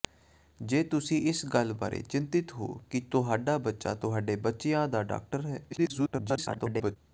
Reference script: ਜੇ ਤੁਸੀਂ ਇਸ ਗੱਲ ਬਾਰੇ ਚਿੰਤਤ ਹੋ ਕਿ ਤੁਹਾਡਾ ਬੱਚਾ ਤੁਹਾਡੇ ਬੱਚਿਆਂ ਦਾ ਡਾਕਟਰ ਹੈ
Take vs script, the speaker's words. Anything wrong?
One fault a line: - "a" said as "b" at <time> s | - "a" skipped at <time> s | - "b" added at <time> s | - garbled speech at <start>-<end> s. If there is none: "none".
- garbled speech at 5.7-7.0 s